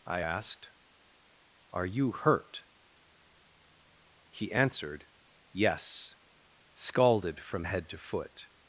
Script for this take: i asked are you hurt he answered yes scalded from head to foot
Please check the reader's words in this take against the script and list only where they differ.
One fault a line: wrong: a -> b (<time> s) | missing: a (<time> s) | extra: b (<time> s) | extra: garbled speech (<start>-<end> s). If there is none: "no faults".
no faults